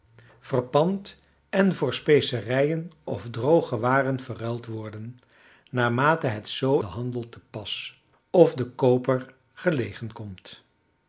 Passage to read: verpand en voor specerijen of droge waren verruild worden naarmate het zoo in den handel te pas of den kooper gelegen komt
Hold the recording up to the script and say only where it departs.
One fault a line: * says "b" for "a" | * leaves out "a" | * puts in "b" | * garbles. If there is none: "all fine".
* leaves out "in"